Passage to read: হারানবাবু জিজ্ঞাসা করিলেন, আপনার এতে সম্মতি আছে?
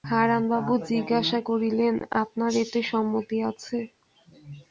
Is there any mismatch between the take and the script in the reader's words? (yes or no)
no